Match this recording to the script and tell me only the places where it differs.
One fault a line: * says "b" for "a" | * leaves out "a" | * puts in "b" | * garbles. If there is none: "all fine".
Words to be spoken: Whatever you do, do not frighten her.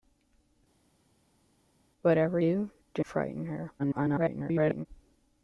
* leaves out "you"
* leaves out "not"
* garbles